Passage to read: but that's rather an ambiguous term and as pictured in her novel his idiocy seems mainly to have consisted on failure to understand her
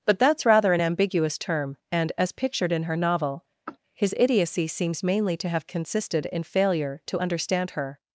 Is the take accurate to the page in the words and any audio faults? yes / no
no